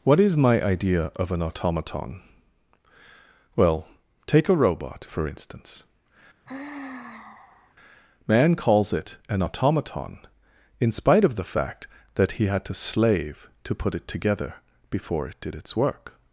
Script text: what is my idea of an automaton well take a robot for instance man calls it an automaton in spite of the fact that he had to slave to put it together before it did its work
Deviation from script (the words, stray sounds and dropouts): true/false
true